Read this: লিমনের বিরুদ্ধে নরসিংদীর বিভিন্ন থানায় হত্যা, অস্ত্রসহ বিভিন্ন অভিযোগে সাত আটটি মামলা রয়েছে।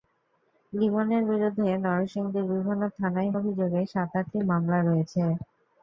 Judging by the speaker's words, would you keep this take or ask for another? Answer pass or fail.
fail